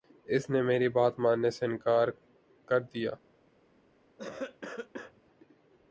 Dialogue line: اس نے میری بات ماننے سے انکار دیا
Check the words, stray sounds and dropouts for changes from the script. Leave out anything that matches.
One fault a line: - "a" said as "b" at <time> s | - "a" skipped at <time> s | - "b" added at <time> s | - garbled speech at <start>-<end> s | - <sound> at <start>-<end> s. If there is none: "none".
- "کر" added at 2.7 s
- cough at 4.2-5.2 s